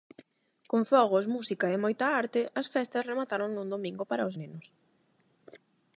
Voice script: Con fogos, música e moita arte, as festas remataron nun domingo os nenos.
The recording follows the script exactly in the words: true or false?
false